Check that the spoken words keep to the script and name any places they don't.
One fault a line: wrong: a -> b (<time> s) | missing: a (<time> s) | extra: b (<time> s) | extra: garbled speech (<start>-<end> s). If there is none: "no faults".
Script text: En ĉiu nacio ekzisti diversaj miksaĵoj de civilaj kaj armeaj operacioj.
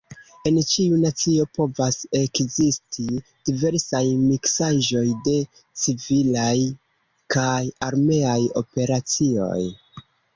extra: povas (1.6 s)